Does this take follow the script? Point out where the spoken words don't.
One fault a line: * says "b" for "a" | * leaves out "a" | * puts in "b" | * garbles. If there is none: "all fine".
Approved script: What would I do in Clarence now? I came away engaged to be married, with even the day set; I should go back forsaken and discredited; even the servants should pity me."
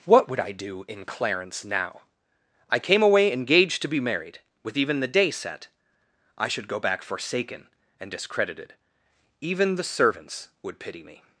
* says "would" for "should"